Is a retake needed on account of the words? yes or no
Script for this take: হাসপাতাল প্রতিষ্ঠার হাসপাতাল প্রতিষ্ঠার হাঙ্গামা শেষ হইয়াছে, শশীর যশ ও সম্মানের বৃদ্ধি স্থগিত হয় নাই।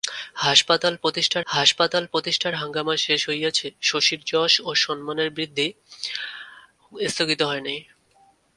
no